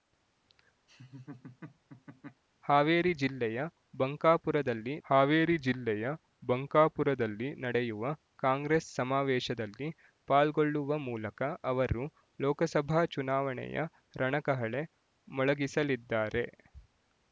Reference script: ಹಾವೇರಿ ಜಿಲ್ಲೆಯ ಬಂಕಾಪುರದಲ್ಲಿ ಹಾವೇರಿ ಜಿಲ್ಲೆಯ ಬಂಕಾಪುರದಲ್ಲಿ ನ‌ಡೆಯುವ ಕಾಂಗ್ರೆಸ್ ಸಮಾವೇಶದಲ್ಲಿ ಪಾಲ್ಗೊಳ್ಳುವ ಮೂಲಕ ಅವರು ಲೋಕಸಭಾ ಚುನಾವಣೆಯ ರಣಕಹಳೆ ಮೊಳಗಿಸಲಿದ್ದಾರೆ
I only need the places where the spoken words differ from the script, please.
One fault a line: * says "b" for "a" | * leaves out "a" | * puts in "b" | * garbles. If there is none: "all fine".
all fine